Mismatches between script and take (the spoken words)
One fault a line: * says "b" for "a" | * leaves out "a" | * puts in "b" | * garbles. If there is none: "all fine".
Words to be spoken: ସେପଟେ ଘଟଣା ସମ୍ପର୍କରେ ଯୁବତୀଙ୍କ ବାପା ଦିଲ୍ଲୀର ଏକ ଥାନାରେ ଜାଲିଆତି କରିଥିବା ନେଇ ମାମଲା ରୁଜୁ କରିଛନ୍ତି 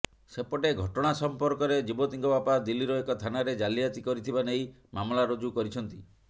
all fine